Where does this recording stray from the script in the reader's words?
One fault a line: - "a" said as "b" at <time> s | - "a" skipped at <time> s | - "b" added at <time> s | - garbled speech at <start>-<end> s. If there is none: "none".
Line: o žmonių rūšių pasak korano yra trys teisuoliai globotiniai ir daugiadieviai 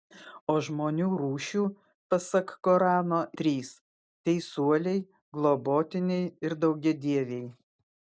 - "yra" skipped at 3.2 s